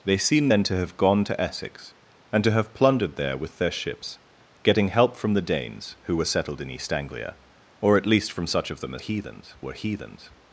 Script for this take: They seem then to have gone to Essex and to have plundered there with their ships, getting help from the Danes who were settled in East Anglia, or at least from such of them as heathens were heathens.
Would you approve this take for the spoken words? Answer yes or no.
yes